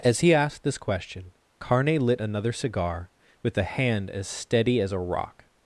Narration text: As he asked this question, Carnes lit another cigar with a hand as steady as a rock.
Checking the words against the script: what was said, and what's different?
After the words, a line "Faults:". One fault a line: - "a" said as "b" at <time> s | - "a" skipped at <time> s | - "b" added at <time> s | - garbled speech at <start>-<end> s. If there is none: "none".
As he asked this question, Carne lit another cigar with a hand as steady as a rock.
Faults:
- "Carnes" said as "Carne" at 1.6 s